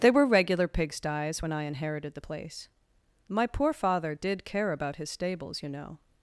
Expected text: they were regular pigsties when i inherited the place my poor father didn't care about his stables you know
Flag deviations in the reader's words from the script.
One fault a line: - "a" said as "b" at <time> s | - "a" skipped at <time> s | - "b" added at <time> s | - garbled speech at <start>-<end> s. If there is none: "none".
- "didn't" said as "did" at 4.1 s